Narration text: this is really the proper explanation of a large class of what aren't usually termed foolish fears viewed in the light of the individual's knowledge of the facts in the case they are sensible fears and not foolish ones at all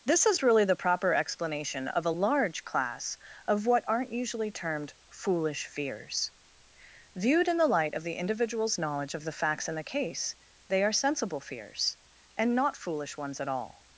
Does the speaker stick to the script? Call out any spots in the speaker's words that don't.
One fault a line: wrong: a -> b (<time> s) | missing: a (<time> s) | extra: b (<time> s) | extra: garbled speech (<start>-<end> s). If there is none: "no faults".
no faults